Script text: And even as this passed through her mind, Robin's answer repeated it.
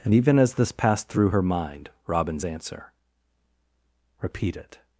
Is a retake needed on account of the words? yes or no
yes